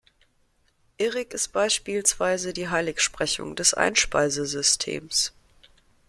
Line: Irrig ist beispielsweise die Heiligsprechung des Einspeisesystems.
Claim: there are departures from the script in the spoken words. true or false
false